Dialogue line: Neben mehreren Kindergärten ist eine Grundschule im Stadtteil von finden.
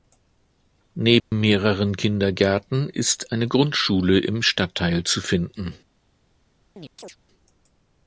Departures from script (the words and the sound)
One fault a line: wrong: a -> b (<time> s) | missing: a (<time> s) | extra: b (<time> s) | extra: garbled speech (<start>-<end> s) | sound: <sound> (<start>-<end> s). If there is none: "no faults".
sound: dropout (1.2-1.3 s)
wrong: von -> zu (5.0 s)
sound: chirp (6.7-7.2 s)